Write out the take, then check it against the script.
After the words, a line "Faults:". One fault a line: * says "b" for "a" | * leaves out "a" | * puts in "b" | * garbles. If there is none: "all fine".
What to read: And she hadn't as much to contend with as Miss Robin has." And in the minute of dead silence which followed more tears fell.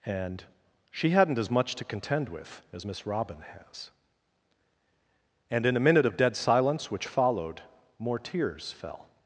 And she hadn't as much to contend with as Miss Robin has." And in the minute of dead silence which followed more tears fell.
Faults:
all fine